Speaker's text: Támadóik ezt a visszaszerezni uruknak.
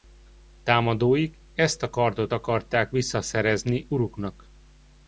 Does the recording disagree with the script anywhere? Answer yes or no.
yes